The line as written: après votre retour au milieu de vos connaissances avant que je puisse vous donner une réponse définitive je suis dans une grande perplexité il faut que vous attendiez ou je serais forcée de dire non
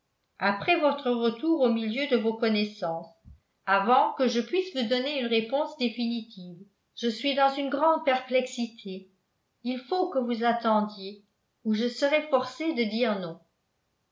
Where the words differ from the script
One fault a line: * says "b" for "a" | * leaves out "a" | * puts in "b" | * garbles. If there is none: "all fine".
all fine